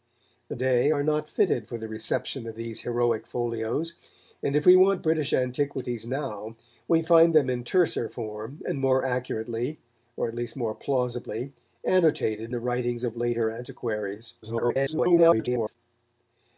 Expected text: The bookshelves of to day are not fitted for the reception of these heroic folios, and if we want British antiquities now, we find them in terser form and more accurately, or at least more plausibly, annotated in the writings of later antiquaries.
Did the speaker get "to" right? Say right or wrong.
wrong